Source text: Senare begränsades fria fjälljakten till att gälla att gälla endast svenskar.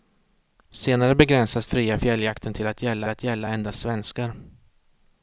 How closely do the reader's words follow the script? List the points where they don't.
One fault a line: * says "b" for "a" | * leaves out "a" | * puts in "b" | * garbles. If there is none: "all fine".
all fine